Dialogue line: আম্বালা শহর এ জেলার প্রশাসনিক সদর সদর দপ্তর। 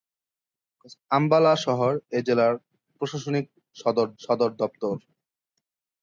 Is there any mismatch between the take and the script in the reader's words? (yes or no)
no